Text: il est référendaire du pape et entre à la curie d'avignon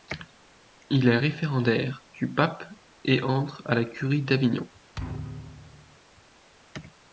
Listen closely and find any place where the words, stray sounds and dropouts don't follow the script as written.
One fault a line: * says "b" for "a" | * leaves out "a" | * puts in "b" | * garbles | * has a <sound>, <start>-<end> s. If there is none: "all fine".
* has a thud, 4.9-6.0 s